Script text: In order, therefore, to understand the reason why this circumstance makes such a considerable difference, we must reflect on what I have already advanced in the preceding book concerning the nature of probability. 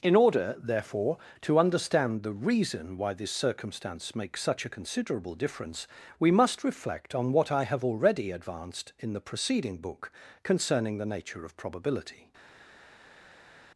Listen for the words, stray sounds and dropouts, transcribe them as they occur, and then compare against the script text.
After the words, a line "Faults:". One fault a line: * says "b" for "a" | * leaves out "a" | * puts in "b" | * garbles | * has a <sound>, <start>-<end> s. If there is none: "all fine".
In order, therefore, to understand the reason why this circumstance makes such a considerable difference, we must reflect on what I have already advanced in the preceding book concerning the nature of probability.
Faults:
all fine